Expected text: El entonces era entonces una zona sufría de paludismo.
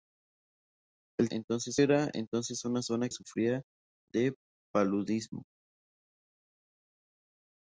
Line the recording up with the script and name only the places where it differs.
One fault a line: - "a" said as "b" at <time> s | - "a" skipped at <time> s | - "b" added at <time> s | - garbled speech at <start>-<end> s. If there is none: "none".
none